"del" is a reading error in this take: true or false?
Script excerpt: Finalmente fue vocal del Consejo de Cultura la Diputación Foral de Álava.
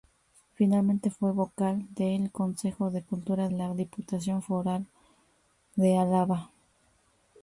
false